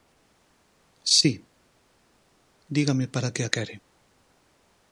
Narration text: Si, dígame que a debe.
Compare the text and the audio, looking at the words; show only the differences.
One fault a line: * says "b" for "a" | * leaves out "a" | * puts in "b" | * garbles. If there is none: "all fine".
* puts in "para"
* says "quere" for "debe"